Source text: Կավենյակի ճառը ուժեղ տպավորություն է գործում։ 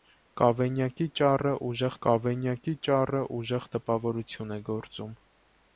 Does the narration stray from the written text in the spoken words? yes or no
yes